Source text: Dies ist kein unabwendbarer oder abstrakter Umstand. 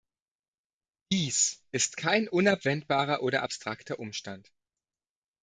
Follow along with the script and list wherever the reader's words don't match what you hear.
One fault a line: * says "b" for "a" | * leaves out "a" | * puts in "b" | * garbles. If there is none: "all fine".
all fine